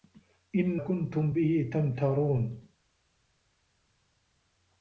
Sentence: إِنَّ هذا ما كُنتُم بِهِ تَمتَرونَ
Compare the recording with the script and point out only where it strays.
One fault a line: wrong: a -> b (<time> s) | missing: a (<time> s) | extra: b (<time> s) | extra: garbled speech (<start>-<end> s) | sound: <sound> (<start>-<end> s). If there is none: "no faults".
missing: هذا ما (0.8 s)